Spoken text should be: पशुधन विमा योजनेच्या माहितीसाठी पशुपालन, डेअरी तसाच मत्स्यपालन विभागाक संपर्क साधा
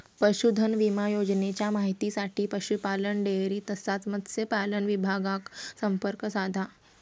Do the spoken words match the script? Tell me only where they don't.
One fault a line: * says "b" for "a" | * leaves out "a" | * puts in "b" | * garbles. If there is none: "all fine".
all fine